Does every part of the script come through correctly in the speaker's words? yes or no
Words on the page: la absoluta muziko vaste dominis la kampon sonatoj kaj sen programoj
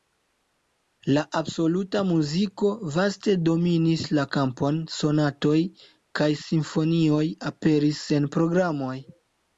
no